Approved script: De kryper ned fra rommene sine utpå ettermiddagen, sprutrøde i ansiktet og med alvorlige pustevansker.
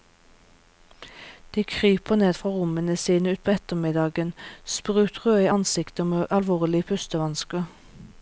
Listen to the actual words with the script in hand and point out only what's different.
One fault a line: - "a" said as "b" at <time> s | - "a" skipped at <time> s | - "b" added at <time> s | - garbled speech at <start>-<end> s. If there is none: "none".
none